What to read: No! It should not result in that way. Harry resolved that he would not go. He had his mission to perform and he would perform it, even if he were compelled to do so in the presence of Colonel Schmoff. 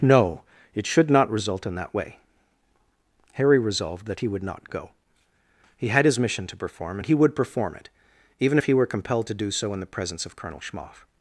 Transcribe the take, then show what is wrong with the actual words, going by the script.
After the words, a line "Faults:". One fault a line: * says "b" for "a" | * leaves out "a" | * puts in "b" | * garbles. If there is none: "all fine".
No! It should not result in that way. Harry resolved that he would not go. He had his mission to perform and he would perform it, even if he were compelled to do so in the presence of Colonel Schmoff.
Faults:
all fine